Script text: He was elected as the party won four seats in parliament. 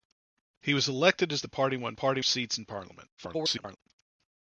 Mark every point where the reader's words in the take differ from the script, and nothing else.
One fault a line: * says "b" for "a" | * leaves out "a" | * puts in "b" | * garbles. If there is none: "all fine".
* says "party" for "four"
* garbles